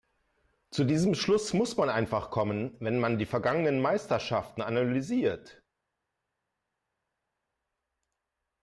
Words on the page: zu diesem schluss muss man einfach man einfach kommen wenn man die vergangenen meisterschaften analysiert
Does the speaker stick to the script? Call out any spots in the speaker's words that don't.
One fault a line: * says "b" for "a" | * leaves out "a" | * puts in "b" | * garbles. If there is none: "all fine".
* leaves out "man einfach"